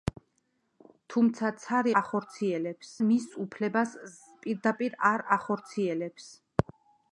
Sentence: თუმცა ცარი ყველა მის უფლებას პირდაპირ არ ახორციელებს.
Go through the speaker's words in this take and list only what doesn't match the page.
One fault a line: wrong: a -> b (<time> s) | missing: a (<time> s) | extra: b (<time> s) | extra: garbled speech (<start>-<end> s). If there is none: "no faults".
wrong: ყველა -> ახორციელებს (2.0 s)